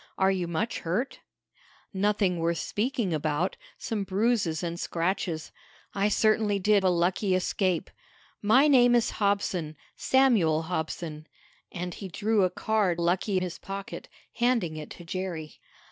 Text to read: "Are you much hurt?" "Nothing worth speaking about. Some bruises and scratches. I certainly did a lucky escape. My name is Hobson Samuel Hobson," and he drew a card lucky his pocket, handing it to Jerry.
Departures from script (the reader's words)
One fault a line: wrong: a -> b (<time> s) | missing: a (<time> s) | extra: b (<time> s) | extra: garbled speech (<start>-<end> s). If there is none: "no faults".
no faults